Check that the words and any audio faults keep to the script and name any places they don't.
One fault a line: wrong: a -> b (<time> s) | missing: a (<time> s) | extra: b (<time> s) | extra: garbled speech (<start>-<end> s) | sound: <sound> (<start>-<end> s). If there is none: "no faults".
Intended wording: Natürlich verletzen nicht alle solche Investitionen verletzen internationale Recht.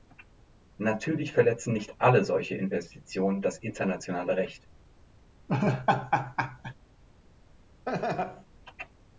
wrong: verletzen -> das (3.4 s)
sound: laugh (5.5-6.7 s)
sound: laugh (7.9-8.5 s)